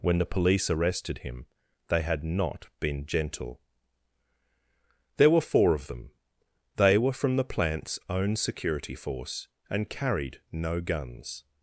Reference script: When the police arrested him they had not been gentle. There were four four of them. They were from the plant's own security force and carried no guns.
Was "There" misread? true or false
false